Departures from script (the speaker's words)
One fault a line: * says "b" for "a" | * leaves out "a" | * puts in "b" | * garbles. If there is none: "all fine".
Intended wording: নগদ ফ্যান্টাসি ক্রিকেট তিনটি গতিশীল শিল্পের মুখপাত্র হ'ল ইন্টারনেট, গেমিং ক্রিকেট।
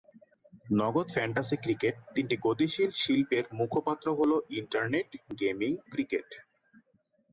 all fine